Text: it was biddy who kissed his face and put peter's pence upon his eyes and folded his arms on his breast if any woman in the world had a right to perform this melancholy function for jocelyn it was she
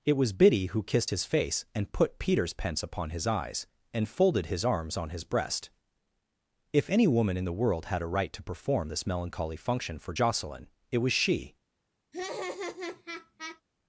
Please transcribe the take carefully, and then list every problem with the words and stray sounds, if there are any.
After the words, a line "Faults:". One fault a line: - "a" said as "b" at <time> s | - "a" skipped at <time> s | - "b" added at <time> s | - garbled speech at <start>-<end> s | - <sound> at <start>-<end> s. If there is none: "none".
it was biddy who kissed his face and put peter's pence upon his eyes and folded his arms on his breast if any woman in the world had a right to perform this melancholy function for jocelyn it was she
Faults:
- laugh at 12.1-13.6 s